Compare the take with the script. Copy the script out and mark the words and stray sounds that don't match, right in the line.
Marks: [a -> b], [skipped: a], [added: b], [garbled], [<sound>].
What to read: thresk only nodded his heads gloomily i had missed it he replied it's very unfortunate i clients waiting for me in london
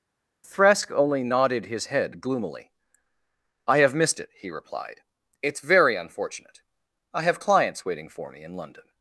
thresk only nodded his [heads -> head] gloomily i [had -> have] missed it he replied it's very unfortunate i [added: have] clients waiting for me in london